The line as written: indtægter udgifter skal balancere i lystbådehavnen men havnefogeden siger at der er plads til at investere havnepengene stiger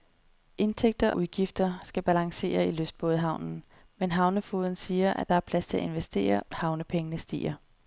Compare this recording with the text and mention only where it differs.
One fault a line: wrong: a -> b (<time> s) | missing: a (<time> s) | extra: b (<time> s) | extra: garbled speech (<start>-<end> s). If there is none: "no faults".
no faults